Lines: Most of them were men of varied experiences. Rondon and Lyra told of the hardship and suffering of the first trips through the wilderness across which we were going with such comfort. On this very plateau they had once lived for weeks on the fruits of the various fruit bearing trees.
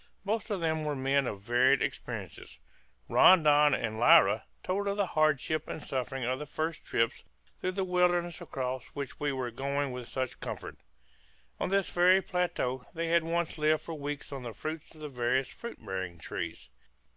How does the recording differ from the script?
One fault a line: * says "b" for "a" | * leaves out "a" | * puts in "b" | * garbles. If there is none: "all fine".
all fine